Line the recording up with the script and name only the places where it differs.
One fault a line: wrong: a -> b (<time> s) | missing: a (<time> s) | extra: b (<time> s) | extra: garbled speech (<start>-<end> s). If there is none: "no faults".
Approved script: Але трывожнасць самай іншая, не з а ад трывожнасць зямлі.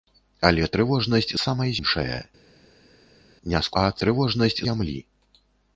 no faults